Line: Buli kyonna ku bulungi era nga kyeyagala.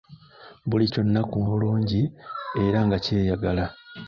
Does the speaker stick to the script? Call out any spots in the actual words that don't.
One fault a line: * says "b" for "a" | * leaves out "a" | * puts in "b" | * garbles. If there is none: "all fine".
all fine